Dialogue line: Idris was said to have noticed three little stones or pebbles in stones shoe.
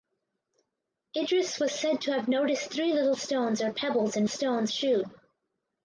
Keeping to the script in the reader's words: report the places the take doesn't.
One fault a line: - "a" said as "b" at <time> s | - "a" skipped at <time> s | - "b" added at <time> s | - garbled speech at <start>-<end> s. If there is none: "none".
none